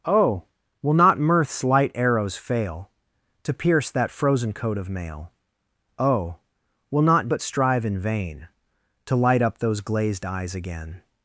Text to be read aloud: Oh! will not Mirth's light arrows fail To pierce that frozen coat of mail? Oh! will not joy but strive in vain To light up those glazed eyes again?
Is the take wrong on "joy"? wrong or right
wrong